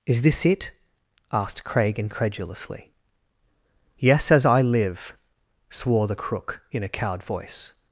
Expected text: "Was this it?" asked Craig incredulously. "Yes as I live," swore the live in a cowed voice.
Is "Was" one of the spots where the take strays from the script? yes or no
yes